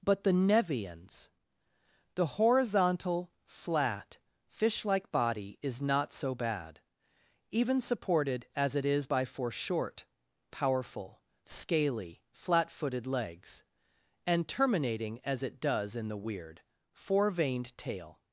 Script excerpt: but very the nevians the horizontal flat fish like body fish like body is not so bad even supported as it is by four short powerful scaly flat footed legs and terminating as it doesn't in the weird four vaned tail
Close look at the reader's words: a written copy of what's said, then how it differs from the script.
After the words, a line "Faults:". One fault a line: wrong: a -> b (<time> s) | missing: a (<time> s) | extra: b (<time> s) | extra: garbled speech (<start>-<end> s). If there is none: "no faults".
but the nevians the horizontal flat fish like body is not so bad even supported as it is by four short powerful scaly flat footed legs and terminating as it does in the weird four vaned tail
Faults:
missing: very (0.2 s)
missing: fish like body (5.6 s)
wrong: doesn't -> does (15.6 s)